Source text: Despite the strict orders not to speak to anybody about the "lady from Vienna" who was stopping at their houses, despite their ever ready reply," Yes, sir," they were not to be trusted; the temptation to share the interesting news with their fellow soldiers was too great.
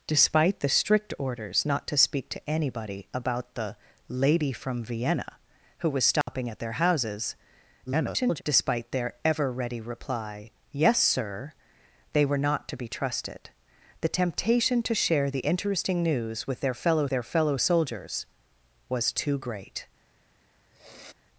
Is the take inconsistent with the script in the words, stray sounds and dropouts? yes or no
yes